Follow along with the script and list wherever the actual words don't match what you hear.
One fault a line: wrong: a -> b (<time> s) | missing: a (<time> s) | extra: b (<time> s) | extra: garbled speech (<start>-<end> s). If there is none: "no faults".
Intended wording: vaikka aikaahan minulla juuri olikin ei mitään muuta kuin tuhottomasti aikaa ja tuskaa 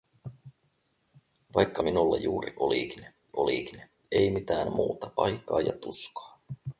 missing: aikaahan (1.8 s)
extra: olikin (3.4 s)
missing: kuin tuhottomasti (5.1 s)